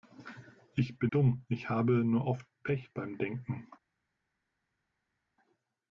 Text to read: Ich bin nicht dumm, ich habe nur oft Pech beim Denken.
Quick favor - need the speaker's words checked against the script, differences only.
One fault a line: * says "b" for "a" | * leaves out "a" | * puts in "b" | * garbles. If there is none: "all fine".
* leaves out "nicht"